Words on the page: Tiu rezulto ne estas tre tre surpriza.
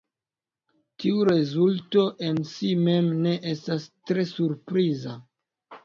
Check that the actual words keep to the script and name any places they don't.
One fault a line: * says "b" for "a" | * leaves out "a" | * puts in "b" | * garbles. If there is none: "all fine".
* puts in "en si mem"
* leaves out "tre"